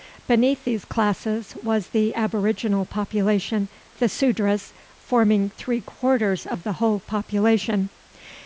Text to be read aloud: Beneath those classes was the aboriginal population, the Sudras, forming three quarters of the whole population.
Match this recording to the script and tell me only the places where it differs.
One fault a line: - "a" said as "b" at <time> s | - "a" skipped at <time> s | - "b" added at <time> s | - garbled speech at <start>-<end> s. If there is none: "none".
- "those" said as "these" at 0.7 s